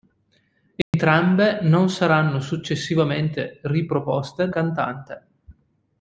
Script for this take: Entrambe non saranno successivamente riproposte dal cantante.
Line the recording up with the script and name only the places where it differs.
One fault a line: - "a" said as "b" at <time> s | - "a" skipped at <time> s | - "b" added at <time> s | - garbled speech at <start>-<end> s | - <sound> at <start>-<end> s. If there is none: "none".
- dropout at 0.8-0.9 s
- "dal" skipped at 4.5 s